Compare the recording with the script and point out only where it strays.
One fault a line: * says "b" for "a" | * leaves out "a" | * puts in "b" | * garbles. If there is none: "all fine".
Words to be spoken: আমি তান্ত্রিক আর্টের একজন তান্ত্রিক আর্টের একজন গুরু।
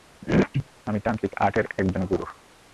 * leaves out "তান্ত্রিক আর্টের একজন"